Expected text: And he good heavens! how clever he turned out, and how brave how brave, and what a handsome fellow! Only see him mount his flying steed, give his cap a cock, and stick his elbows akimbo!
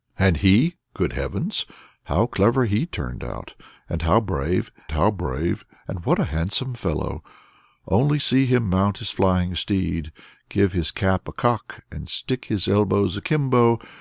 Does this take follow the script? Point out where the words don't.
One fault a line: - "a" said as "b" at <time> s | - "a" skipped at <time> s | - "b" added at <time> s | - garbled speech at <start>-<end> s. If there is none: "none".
none